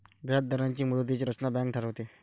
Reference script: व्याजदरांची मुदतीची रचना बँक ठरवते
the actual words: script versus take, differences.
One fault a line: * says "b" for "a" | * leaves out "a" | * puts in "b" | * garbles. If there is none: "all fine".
all fine